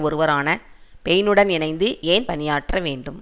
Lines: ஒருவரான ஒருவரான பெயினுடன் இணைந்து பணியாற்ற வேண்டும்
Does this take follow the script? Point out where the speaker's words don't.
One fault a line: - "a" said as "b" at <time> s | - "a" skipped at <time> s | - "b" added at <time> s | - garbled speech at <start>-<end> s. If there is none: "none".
- "ஒருவரான" skipped at 0.5 s
- "ஏன்" added at 2.0 s